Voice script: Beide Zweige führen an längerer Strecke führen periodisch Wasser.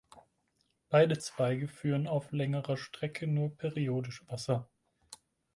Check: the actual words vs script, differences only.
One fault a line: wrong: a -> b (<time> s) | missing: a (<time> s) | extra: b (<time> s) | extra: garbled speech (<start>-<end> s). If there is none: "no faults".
wrong: an -> auf (2.1 s)
wrong: führen -> nur (3.3 s)